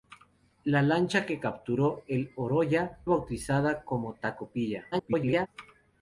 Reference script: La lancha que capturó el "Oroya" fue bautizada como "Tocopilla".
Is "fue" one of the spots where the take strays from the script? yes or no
yes